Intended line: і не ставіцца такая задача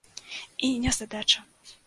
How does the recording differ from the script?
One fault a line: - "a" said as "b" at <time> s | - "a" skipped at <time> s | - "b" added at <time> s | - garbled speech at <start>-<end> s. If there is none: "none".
- "ставіцца такая" skipped at 0.9 s